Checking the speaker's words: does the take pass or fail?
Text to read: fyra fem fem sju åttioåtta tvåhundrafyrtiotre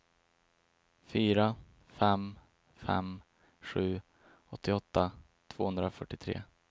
pass